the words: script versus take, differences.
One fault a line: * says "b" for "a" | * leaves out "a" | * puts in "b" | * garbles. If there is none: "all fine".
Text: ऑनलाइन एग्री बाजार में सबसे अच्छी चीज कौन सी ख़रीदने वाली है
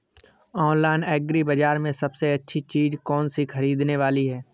all fine